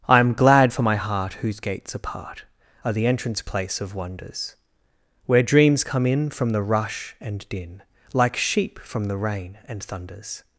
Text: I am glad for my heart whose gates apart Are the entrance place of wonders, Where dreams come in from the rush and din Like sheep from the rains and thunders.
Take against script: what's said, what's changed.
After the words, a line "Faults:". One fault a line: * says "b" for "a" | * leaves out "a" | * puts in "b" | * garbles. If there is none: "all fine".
I am glad for my heart whose gates apart Are the entrance place of wonders, Where dreams come in from the rush and din Like sheep from the rain and thunders.
Faults:
* says "rain" for "rains"